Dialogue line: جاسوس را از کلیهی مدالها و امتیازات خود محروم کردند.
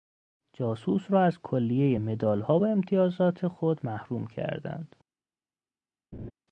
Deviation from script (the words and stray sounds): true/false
true